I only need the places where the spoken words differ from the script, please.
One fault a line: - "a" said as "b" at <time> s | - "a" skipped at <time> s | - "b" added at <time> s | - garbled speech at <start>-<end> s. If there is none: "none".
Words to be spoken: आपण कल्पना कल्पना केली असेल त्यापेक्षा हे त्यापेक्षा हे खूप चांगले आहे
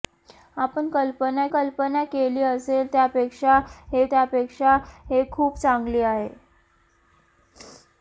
none